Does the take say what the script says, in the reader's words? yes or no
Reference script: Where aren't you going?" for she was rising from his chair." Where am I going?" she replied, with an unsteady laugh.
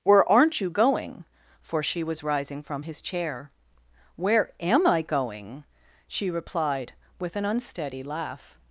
yes